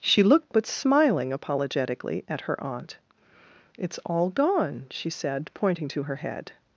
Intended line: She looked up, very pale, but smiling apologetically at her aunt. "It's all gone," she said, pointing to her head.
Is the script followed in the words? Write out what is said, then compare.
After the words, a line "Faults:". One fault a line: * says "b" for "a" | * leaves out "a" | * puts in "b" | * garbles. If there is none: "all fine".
She looked but smiling apologetically at her aunt. "It's all gone," she said, pointing to her head.
Faults:
* leaves out "up very pale"